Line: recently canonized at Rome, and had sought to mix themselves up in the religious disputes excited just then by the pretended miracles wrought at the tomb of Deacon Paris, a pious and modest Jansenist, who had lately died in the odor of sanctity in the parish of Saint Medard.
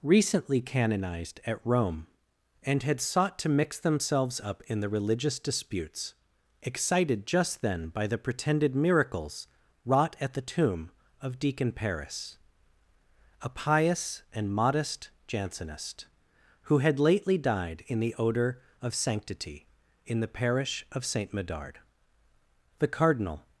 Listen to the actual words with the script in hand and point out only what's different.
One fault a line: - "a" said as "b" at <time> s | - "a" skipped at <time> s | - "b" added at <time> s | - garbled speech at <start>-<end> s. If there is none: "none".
- "The cardinal" added at 22.8 s